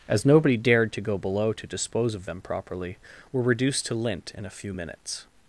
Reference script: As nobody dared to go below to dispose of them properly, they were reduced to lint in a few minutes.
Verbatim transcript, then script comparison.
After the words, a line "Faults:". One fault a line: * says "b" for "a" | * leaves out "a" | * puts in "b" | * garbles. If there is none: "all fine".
As nobody dared to go below to dispose of them properly, were reduced to lint in a few minutes.
Faults:
* leaves out "they"